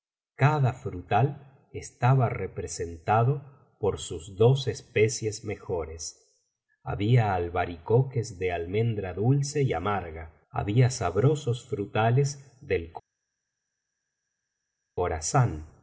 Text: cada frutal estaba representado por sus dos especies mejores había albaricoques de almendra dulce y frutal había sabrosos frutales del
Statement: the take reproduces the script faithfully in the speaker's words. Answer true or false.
false